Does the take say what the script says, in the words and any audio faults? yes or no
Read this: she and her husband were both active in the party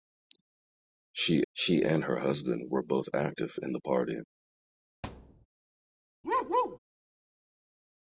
no